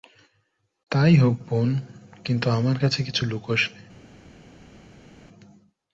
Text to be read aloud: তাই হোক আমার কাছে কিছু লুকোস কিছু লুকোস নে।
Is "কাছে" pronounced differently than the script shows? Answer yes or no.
no